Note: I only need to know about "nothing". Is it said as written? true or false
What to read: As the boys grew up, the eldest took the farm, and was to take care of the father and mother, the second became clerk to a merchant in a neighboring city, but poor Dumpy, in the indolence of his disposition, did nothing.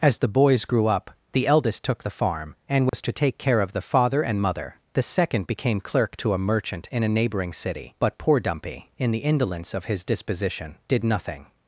true